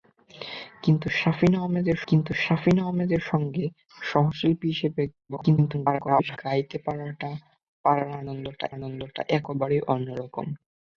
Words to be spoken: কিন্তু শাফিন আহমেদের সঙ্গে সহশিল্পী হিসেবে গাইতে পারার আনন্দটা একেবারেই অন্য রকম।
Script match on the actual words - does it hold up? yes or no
no